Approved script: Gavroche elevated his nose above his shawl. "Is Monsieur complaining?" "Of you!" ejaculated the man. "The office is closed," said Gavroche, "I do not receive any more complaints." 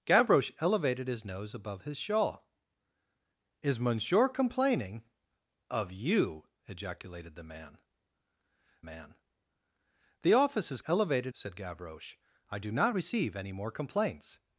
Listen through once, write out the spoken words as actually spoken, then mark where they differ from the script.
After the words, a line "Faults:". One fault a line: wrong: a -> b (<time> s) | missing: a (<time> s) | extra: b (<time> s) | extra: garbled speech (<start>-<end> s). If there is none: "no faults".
Gavroche elevated his nose above his shawl. "Is Monsieur complaining?" "Of you!" ejaculated the man man. "The office is elevated," said Gavroche, "I do not receive any more complaints."
Faults:
extra: man (8.8 s)
wrong: closed -> elevated (10.9 s)